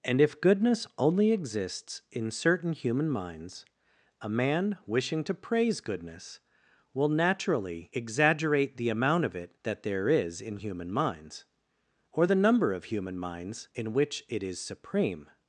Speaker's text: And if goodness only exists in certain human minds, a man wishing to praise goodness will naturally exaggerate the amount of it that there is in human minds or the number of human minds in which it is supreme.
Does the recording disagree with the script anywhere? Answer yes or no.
no